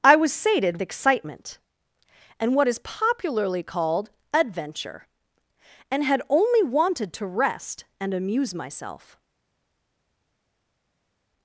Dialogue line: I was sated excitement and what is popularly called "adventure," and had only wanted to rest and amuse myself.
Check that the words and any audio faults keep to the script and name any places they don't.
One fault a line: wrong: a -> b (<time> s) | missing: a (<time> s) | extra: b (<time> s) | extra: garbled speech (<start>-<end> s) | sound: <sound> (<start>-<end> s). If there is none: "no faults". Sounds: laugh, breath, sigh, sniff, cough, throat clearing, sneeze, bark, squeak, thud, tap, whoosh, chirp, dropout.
no faults